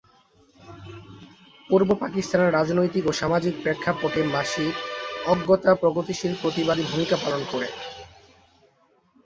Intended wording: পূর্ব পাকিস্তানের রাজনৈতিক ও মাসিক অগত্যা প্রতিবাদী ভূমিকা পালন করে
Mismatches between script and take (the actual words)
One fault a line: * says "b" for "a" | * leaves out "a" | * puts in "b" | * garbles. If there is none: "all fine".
* puts in "সামাজিক প্রেক্ষাপটে"
* puts in "প্রগতিশীল"